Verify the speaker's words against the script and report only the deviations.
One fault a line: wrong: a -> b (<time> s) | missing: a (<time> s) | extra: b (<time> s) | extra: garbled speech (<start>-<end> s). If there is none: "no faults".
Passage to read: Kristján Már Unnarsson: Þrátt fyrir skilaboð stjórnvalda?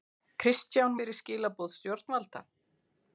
missing: Már Unnarsson Þrátt (0.9 s)